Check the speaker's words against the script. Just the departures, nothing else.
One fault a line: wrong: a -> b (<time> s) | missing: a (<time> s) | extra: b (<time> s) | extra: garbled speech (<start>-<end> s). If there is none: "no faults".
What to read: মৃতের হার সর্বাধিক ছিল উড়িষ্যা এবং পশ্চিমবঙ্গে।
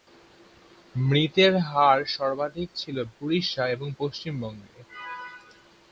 no faults